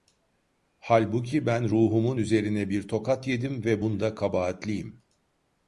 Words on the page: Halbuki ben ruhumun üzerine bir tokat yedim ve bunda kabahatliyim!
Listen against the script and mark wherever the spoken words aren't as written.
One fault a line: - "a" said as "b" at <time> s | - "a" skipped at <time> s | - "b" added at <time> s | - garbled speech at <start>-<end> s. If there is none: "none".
none